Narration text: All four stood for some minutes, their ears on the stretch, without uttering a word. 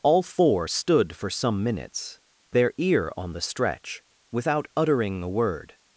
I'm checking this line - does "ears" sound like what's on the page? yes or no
no